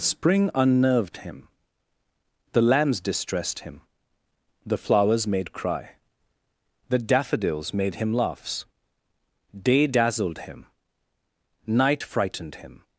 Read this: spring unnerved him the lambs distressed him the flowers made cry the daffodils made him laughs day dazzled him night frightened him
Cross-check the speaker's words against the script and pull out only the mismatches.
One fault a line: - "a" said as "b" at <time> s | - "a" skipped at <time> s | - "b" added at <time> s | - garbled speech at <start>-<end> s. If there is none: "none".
none